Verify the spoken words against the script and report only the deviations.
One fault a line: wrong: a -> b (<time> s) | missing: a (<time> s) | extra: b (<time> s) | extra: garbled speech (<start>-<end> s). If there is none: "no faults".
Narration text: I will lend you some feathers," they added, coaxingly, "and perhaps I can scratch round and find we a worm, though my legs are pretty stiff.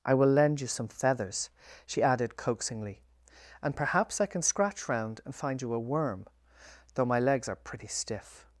wrong: they -> she (1.9 s)
wrong: we -> you (5.6 s)